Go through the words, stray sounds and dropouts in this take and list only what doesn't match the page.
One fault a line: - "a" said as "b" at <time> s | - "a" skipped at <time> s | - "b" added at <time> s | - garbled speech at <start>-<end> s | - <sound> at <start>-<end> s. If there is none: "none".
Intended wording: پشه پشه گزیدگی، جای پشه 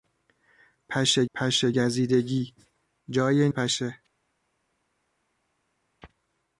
none